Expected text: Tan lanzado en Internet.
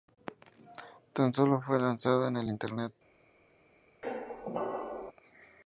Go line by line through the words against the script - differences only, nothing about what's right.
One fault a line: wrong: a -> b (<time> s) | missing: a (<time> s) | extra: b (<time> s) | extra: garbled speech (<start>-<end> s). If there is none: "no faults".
extra: solo fue (1.3 s)
extra: el (2.4 s)